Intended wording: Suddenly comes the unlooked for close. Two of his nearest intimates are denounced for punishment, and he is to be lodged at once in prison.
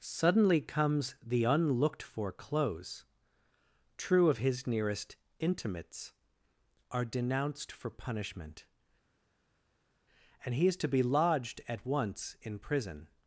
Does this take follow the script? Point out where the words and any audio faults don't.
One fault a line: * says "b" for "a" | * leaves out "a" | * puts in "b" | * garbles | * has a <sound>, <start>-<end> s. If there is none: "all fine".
* says "True" for "Two"